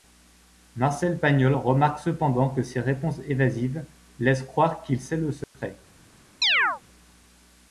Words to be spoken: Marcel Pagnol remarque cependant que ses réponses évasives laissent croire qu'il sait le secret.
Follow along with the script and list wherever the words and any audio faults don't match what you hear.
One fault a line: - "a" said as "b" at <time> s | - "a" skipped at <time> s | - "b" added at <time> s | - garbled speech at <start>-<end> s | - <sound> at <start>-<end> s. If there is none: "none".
- dropout at 5.4-5.5 s
- chirp at 6.4-6.8 s